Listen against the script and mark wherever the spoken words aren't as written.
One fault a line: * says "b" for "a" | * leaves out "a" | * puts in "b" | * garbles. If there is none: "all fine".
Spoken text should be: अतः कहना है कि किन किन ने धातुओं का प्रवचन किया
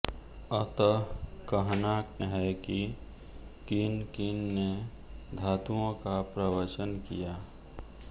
all fine